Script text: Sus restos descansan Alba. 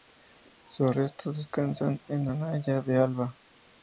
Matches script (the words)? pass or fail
fail